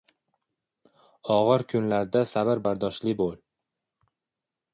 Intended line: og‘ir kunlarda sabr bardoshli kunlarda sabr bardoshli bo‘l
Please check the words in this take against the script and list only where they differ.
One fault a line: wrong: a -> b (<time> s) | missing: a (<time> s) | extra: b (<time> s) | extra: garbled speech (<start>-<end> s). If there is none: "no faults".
missing: kunlarda sabr bardoshli (3.2 s)